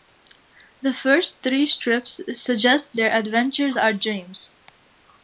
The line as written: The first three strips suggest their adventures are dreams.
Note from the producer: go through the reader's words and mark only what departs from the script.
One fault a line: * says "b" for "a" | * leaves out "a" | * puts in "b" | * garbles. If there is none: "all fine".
all fine